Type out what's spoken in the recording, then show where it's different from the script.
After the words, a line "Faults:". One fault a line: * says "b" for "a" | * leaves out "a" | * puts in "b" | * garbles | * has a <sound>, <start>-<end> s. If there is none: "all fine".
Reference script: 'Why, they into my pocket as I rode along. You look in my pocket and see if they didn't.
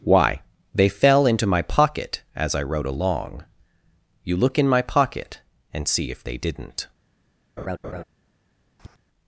'Why, they fell into my pocket as I rode along. You look in my pocket and see if they didn't.
Faults:
* puts in "fell"
* has a laugh, 7.6-8.0 s
* has a tap, 8.8-9.0 s